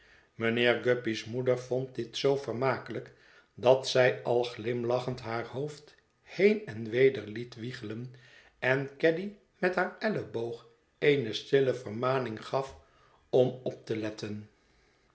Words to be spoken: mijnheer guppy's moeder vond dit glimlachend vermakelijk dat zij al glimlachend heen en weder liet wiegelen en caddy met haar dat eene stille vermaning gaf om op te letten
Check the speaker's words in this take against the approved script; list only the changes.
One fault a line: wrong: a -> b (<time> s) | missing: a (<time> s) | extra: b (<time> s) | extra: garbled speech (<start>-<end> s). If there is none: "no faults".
wrong: glimlachend -> zoo (2.2 s)
extra: haar hoofd (5.2 s)
wrong: dat -> elleboog (10.0 s)